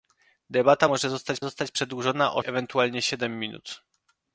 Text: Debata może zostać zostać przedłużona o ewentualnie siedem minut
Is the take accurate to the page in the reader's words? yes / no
yes